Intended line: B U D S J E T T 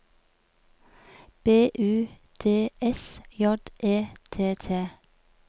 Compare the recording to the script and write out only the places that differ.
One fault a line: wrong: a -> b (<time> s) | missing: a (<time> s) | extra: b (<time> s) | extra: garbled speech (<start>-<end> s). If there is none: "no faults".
no faults